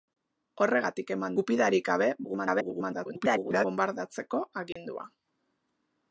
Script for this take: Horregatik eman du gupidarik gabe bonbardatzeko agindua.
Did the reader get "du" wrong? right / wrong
wrong